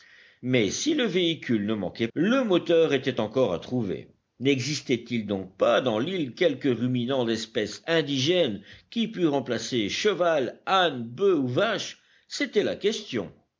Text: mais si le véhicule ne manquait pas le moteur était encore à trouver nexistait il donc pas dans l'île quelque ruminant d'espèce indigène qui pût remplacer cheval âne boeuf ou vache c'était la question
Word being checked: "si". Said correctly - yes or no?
yes